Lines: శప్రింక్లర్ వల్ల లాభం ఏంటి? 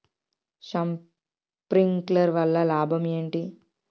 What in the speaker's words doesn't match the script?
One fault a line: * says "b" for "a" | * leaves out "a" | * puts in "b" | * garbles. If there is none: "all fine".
all fine